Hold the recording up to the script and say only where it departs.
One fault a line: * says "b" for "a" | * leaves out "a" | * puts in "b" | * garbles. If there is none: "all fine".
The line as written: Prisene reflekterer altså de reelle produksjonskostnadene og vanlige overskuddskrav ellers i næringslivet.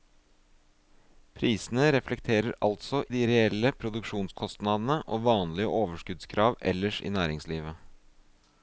all fine